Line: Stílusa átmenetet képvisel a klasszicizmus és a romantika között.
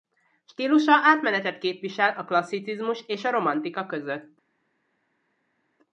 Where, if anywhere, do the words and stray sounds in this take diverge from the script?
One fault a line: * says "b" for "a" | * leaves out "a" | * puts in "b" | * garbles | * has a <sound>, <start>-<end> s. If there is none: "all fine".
all fine